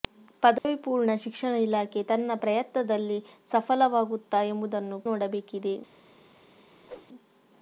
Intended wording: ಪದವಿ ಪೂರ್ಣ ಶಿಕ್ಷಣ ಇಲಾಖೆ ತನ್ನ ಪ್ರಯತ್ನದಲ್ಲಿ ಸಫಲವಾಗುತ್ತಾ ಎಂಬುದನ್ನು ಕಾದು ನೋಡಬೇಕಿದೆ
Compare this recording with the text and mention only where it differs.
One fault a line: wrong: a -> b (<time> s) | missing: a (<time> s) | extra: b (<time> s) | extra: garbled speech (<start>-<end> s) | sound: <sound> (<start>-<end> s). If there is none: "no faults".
sound: dropout (0.6-0.7 s)
missing: ಕಾದು (5.0 s)
sound: whoosh (6.8-7.1 s)